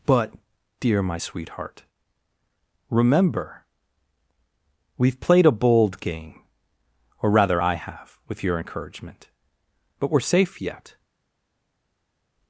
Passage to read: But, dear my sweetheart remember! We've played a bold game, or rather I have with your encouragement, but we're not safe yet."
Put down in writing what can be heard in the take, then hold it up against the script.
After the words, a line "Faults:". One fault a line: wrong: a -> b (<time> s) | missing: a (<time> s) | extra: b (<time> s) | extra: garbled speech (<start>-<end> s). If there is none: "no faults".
But, dear my sweetheart remember! We've played a bold game, or rather I have with your encouragement, but we're safe yet."
Faults:
missing: not (10.2 s)